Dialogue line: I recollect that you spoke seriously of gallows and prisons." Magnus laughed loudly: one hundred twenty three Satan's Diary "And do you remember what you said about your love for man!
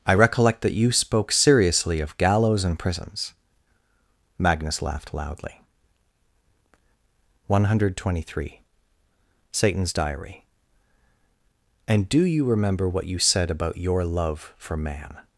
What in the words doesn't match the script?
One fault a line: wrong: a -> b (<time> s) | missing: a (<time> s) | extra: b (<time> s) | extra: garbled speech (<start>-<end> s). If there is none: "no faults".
no faults